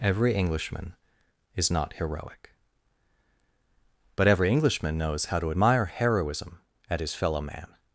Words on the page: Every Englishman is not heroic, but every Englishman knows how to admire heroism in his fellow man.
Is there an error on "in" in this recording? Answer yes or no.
yes